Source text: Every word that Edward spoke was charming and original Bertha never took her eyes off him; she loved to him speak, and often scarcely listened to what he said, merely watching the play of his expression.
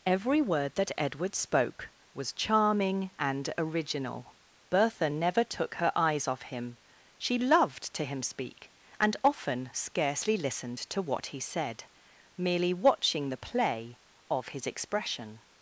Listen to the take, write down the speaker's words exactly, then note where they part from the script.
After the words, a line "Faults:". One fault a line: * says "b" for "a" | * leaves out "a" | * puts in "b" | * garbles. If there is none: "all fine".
Every word that Edward spoke was charming and original Bertha never took her eyes off him; she loved to him speak, and often scarcely listened to what he said, merely watching the play of his expression.
Faults:
all fine